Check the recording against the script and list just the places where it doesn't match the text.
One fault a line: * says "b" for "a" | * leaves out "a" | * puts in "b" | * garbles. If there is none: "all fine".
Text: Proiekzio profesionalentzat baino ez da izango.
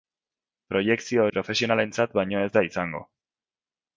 all fine